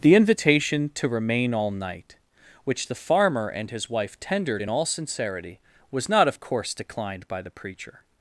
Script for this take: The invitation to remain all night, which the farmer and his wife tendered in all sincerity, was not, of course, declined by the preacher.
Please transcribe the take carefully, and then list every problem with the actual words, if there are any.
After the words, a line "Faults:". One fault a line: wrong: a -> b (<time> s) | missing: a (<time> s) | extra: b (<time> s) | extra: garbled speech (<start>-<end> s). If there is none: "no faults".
The invitation to remain all night, which the farmer and his wife tendered in all sincerity, was not, of course, declined by the preacher.
Faults:
no faults